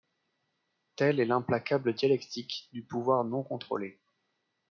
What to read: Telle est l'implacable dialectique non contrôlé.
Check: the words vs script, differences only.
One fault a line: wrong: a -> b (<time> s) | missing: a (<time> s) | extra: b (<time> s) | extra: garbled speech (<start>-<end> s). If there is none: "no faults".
extra: du pouvoir (2.7 s)